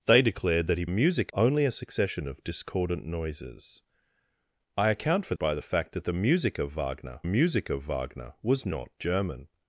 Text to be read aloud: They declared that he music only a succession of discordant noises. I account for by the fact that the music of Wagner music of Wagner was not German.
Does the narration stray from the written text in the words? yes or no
no